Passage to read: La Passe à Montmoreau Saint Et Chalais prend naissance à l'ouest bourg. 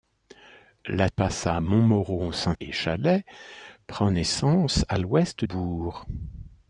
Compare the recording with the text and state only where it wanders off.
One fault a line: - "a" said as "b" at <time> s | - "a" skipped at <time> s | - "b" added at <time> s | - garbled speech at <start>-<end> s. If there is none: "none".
none